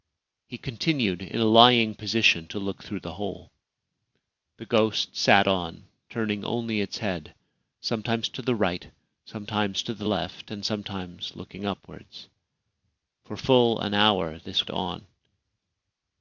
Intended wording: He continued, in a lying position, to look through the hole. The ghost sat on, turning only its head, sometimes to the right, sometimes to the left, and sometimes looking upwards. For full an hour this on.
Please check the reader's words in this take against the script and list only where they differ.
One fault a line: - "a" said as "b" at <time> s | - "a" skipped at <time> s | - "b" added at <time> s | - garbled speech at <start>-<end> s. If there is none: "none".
none